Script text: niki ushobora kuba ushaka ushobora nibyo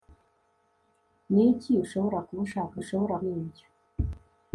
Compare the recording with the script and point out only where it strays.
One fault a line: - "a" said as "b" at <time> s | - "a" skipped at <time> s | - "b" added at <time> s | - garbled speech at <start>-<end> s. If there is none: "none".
none